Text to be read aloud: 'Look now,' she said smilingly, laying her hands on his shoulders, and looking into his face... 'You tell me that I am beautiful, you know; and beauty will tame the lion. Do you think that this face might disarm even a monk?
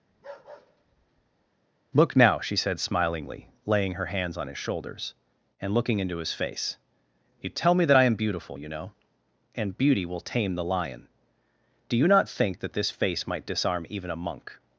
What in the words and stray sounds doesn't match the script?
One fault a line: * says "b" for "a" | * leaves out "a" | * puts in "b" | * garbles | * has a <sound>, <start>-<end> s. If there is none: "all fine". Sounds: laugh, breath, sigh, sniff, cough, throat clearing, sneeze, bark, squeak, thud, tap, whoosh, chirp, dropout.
* has a bark, 0.1-1.5 s
* puts in "not"